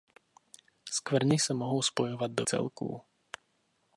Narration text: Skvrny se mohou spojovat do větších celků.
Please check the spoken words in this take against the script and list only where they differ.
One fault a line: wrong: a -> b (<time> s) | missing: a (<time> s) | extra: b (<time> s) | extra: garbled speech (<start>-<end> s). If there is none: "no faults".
missing: větších (2.5 s)